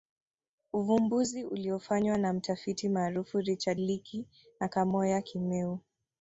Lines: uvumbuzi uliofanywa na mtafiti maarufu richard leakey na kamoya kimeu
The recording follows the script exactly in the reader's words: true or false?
true